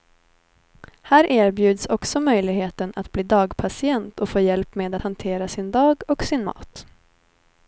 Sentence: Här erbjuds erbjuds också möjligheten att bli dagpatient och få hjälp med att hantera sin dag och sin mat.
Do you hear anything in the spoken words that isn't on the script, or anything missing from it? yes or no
yes